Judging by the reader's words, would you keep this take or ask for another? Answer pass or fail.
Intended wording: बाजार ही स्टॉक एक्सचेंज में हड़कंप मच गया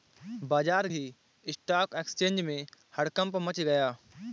pass